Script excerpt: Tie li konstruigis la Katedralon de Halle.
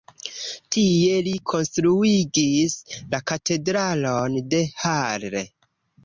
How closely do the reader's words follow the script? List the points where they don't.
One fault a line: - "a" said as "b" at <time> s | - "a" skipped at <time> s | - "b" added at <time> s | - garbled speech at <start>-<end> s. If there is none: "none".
none